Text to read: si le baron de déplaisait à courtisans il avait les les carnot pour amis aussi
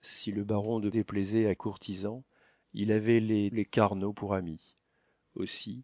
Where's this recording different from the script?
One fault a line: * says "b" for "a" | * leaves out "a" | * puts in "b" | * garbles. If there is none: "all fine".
all fine